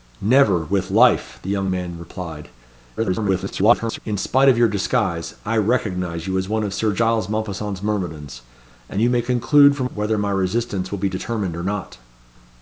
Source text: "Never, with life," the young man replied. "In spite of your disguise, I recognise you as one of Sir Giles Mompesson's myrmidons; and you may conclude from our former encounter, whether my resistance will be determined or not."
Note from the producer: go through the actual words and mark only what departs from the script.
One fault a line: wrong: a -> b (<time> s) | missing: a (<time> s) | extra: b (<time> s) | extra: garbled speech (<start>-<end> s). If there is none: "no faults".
extra: garbled speech (3.0-4.0 s)
missing: our former encounter (9.9 s)